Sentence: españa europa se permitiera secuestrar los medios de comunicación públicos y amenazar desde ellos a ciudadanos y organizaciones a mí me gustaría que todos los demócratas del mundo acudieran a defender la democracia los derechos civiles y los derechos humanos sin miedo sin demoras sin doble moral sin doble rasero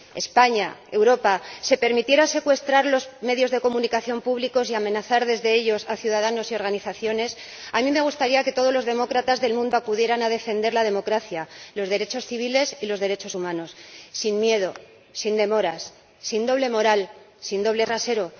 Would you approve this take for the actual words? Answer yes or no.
yes